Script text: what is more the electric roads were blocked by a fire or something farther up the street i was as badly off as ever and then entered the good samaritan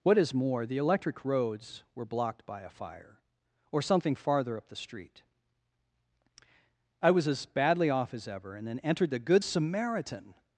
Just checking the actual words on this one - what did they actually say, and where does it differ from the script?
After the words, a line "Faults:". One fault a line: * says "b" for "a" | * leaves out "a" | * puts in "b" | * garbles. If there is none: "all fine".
what is more the electric roads were blocked by a fire or something farther up the street i was as badly off as ever and then entered the good samaritan
Faults:
all fine